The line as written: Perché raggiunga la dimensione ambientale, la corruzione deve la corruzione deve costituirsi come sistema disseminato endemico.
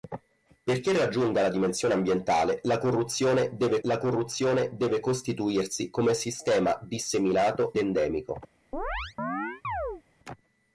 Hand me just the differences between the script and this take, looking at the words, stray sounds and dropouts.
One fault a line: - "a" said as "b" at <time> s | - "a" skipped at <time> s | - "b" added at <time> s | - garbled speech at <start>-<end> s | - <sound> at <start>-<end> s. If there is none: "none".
- chirp at 8.7-10.0 s